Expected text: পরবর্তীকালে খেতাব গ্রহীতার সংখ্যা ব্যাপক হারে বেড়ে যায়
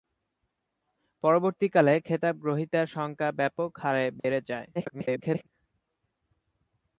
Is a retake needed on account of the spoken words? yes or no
yes